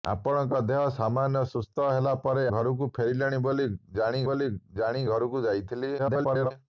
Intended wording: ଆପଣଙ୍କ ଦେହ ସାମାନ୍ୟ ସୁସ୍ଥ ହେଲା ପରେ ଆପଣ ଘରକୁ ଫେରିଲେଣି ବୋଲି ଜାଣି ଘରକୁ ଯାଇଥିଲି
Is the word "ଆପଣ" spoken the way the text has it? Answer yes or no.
no